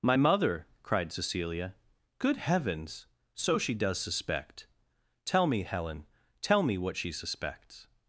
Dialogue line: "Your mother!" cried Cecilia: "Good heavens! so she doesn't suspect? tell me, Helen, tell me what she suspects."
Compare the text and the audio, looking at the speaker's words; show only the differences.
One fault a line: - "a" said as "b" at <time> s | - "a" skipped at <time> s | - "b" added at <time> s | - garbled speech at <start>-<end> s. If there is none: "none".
- "Your" said as "My" at 0.0 s
- "doesn't" said as "does" at 3.7 s